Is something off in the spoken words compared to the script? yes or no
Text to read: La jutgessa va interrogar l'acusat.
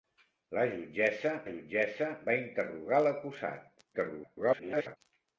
yes